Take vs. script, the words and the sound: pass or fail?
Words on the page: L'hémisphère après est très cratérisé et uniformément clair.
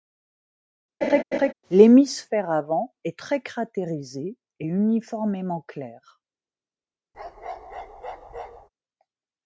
fail